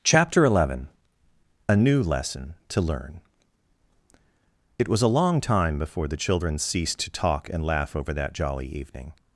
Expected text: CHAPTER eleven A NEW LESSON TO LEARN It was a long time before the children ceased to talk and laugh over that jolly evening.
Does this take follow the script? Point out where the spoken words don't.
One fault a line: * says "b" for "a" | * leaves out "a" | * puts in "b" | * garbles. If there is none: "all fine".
all fine